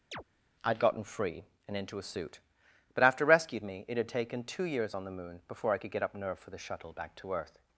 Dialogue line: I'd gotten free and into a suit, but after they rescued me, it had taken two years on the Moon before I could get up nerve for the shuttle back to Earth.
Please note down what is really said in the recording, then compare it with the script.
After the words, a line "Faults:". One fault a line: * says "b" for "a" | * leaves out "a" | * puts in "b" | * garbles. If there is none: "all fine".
I'd gotten free and into a suit, but after rescued me, it had taken two years on the Moon before I could get up nerve for the shuttle back to Earth.
Faults:
* leaves out "they"